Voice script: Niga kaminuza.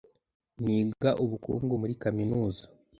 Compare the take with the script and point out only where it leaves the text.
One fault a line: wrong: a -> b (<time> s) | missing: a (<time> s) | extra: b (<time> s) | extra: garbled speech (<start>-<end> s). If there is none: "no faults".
extra: ubukungu muri (1.2 s)